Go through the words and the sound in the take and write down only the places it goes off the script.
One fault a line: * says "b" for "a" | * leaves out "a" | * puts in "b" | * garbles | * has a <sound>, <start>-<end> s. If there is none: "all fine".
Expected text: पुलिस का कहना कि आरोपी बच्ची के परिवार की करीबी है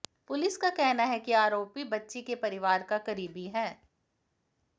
* puts in "है"
* says "का" for "की"